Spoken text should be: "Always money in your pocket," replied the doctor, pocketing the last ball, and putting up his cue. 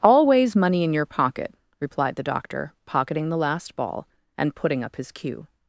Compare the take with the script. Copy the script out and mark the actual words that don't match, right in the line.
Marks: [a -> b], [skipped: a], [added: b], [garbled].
"Always money in your pocket," replied the doctor, pocketing the last ball, and putting up his cue.